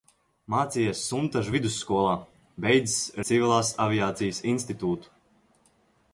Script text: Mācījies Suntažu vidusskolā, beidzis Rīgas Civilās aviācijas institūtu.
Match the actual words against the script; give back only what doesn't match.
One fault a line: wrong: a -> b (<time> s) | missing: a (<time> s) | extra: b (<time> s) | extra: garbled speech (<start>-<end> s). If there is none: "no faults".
missing: Rīgas (3.0 s)